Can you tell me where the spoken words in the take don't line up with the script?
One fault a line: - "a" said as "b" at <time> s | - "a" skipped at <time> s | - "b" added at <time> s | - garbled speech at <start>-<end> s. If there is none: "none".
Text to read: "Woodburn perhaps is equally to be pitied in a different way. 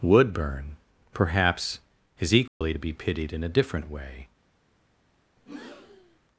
none